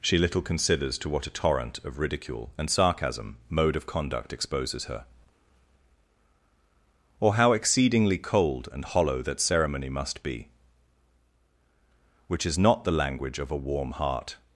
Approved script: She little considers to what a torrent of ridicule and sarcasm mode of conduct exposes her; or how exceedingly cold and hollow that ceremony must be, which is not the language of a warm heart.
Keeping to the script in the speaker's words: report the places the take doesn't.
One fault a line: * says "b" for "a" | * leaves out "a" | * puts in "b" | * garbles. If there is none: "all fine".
all fine